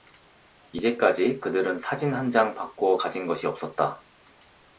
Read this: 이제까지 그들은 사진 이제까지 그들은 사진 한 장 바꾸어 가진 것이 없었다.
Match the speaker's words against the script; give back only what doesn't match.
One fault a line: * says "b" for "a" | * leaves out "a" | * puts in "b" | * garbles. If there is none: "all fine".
* leaves out "이제까지 그들은 사진"